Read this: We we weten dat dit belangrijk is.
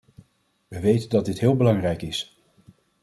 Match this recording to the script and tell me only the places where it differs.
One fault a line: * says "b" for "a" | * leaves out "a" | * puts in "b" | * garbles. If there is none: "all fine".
* leaves out "we"
* puts in "heel"